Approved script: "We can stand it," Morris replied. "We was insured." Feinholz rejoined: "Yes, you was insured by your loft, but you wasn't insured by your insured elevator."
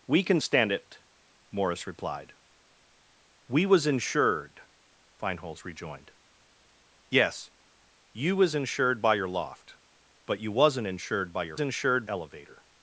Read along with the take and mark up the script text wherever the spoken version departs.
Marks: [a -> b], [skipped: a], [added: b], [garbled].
"We can stand it," Morris replied. "We was insured." Feinholz rejoined: "Yes, you was insured by your loft, but you wasn't insured by your insured elevator."